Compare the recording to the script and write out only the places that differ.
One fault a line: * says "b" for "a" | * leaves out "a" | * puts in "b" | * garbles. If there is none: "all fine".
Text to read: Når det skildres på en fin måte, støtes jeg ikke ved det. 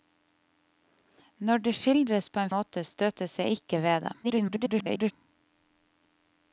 * leaves out "fin"
* garbles